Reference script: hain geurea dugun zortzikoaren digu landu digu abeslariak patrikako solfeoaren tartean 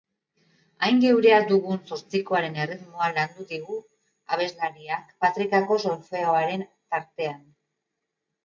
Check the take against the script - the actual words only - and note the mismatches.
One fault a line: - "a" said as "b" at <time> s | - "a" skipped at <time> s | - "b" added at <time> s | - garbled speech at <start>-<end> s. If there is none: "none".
- "digu" said as "erritmoa" at 2.6 s